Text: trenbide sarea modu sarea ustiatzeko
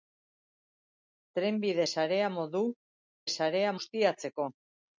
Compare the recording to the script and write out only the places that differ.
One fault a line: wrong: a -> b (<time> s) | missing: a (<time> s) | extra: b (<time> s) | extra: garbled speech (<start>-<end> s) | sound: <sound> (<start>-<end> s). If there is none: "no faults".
no faults